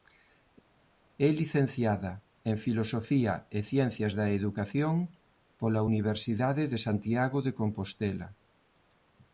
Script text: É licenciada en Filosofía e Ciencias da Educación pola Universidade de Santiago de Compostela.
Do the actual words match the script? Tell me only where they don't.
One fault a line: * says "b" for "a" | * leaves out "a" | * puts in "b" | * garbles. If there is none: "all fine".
all fine